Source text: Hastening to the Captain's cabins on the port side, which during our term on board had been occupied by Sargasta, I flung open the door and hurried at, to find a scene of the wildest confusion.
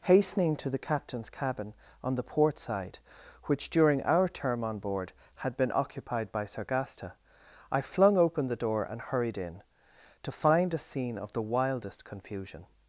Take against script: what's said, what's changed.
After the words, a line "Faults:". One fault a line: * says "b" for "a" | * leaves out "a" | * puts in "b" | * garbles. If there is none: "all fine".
Hastening to the Captain's cabin on the port side, which during our term on board had been occupied by Sargasta, I flung open the door and hurried in, to find a scene of the wildest confusion.
Faults:
* says "cabin" for "cabins"
* says "in" for "at"